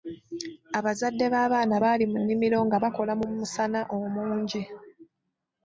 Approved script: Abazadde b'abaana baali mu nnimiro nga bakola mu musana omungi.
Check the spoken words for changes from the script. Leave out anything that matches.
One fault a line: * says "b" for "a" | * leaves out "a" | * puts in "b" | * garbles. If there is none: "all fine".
all fine